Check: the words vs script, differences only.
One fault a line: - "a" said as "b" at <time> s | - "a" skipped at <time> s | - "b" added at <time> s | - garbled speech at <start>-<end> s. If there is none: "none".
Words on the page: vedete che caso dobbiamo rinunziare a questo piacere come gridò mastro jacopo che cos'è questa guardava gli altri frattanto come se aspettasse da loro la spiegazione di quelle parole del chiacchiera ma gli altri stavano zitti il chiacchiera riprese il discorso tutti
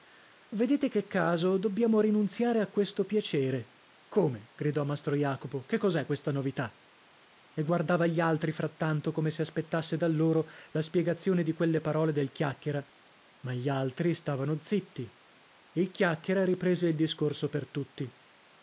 - "novità e" added at 6.3 s
- "per" added at 17.5 s